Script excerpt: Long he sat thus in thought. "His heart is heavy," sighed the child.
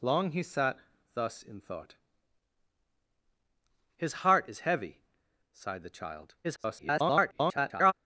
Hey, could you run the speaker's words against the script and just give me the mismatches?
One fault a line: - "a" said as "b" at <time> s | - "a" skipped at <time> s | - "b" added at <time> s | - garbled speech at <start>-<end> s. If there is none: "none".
- garbled speech at 6.4-7.9 s